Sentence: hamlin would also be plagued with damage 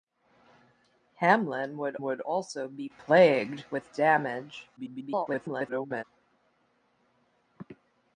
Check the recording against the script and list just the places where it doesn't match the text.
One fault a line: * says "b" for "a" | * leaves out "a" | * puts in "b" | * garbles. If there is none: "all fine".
* puts in "would"
* garbles